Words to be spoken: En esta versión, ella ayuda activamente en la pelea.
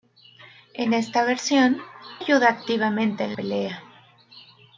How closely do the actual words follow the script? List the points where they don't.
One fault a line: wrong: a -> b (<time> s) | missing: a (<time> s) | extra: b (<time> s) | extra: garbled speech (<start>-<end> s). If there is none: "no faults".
missing: ella (1.8 s)
missing: la (3.3 s)